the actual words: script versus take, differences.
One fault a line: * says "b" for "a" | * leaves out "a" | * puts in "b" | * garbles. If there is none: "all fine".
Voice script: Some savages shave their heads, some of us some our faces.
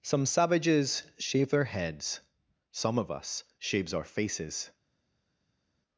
* says "shaves" for "some"